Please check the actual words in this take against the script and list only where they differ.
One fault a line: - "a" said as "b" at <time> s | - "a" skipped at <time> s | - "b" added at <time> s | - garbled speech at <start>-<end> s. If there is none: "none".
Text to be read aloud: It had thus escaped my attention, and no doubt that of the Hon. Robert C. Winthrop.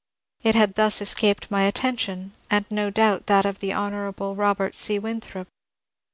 none